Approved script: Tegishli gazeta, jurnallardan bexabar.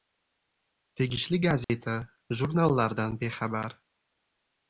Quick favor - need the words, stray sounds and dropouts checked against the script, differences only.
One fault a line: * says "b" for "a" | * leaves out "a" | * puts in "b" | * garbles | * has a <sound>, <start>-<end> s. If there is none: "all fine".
* has a dropout, 1.6-1.7 s